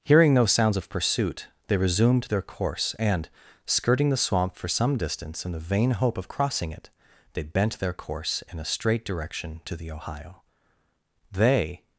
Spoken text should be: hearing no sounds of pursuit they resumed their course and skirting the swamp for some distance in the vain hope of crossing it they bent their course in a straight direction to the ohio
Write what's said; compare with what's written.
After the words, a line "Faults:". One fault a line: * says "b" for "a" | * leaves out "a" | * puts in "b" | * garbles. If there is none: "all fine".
hearing no sounds of pursuit they resumed their course and skirting the swamp for some distance in the vain hope of crossing it they bent their course in a straight direction to the ohio they
Faults:
* puts in "they"